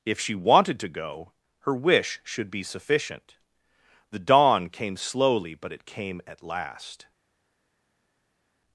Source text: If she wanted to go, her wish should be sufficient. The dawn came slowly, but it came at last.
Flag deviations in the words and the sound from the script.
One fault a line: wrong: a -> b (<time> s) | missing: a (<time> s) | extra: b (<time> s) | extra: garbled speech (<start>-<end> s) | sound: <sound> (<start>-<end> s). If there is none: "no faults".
no faults